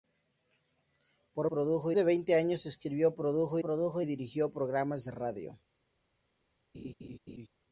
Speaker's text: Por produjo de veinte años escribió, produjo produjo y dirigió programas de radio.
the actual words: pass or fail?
pass